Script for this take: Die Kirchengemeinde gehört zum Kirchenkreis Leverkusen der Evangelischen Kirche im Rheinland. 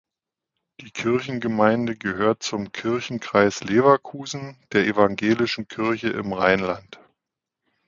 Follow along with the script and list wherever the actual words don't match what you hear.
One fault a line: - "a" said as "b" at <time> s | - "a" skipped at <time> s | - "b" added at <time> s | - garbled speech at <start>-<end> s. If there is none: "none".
none